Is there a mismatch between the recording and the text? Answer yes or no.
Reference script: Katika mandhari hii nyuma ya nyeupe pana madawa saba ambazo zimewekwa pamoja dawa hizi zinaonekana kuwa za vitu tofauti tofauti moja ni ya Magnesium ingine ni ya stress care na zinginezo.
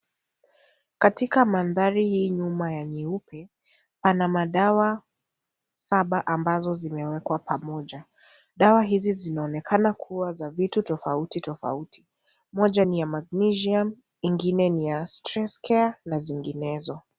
no